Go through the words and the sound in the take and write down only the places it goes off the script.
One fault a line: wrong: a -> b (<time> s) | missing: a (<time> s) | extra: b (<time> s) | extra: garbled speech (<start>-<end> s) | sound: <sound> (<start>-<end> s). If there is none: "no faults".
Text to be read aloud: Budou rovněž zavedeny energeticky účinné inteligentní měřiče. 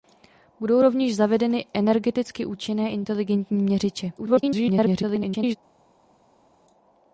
extra: garbled speech (4.2-5.6 s)